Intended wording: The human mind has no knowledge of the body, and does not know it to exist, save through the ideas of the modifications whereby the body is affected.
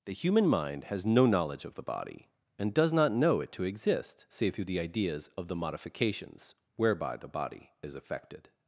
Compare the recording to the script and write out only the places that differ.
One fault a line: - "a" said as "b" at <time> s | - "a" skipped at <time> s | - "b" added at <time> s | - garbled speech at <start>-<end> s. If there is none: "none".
none